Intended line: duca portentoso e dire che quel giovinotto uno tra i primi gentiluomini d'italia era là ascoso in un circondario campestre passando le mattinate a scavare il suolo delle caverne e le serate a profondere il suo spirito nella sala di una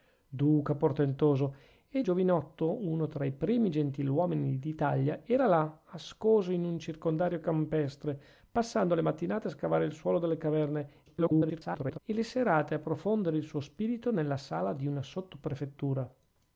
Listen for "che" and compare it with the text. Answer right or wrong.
wrong